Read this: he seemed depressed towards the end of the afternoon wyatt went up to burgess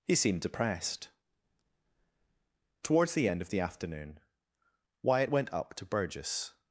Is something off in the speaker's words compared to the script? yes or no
no